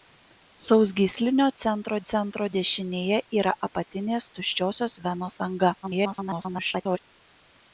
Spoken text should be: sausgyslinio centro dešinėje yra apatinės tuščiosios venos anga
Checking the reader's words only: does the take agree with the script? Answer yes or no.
no